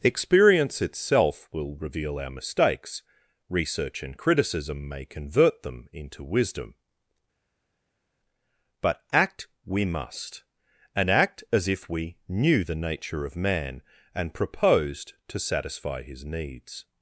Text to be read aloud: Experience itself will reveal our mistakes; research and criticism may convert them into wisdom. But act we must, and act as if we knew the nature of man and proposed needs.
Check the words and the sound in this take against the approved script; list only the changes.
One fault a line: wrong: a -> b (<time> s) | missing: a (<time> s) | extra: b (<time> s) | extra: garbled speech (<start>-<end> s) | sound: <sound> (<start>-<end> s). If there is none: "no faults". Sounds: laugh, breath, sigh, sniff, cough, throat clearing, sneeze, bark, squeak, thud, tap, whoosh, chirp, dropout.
extra: to satisfy his (15.3 s)